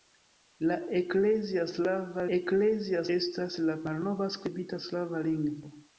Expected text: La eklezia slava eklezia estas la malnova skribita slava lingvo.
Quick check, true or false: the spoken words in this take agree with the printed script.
true